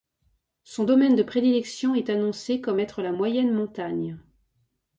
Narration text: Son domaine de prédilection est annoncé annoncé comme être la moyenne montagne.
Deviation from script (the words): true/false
true